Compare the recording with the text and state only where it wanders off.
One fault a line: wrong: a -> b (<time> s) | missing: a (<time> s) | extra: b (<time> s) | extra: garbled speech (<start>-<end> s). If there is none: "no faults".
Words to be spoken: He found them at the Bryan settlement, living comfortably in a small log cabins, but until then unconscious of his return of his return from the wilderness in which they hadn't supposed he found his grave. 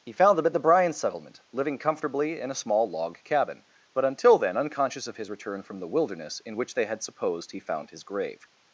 wrong: cabins -> cabin (3.2 s)
missing: of his return (5.6 s)
wrong: hadn't -> had (6.9 s)